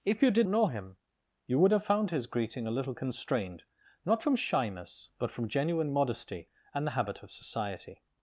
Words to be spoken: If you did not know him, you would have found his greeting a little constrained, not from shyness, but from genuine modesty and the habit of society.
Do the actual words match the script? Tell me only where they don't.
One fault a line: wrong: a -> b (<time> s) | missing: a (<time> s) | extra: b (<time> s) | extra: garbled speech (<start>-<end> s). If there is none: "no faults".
missing: not (0.5 s)